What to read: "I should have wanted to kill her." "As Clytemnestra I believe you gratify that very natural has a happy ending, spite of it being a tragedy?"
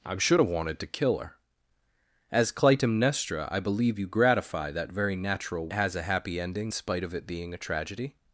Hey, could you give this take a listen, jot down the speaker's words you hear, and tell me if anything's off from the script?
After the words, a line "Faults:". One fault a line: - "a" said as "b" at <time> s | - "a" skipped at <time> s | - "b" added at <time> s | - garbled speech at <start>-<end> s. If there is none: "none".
"I should have wanted to kill her." "As Clytemnestra I believe you gratify that very natural has a happy ending, spite of it being a tragedy?"
Faults:
none